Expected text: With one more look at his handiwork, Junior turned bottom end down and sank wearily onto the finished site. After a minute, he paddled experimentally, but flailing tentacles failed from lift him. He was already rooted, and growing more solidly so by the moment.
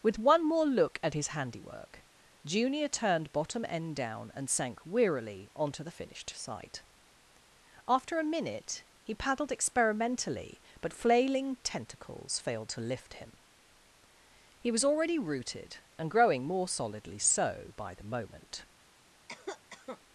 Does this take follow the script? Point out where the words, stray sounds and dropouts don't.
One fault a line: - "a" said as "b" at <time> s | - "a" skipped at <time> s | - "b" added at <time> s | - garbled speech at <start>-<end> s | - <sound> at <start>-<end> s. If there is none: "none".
- "from" said as "to" at 12.7 s
- cough at 19.3-20.0 s